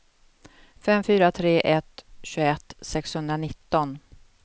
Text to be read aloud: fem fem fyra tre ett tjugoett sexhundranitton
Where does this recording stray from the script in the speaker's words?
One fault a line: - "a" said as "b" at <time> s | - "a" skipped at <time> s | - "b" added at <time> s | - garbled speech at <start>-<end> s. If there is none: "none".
- "fem" skipped at 1.0 s